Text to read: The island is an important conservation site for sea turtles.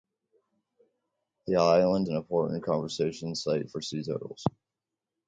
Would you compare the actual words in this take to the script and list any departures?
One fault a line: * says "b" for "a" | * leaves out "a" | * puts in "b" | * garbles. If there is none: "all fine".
* leaves out "is"